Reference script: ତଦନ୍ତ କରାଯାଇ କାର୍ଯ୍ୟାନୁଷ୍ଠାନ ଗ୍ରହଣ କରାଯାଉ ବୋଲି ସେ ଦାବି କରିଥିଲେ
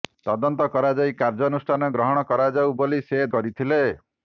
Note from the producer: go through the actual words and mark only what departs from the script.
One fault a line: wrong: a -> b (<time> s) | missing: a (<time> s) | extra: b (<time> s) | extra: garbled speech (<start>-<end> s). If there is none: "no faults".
missing: ଦାବି (3.2 s)